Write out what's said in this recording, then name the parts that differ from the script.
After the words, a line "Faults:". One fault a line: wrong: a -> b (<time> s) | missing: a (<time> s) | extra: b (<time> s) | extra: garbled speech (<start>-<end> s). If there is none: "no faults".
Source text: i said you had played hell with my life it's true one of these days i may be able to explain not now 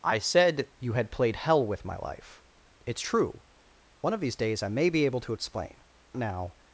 i said you had played hell with my life it's true one of these days i may be able to explain now
Faults:
missing: not (5.8 s)